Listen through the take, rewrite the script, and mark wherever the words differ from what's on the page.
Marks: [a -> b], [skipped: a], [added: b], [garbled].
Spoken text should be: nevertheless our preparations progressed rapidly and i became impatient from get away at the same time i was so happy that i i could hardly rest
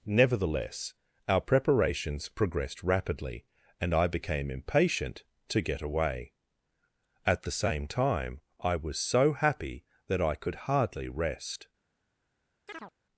nevertheless our preparations progressed rapidly and i became impatient [from -> to] get away at the same time i was so happy that i [skipped: i] could hardly rest